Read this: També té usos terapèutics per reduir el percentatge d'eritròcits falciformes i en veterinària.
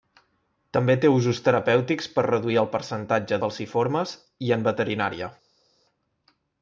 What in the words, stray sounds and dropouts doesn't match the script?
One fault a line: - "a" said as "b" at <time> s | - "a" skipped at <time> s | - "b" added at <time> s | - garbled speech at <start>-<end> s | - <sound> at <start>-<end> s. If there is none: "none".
- "d'eritròcits" skipped at 3.4 s